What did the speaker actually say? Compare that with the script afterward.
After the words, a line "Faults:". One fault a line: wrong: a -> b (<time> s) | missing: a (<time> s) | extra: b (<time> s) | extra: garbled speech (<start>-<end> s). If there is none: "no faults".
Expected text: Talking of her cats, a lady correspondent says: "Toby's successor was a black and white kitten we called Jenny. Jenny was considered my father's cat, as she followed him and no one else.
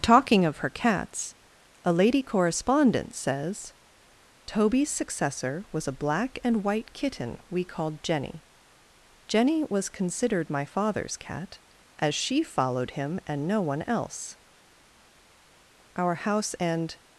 Talking of her cats, a lady correspondent says: "Toby's successor was a black and white kitten we called Jenny. Jenny was considered my father's cat, as she followed him and no one else. Our house and
Faults:
extra: Our house and (15.9 s)